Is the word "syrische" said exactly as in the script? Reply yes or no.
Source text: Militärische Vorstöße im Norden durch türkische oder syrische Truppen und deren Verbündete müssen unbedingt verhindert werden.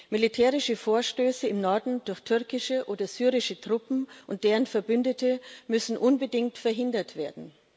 yes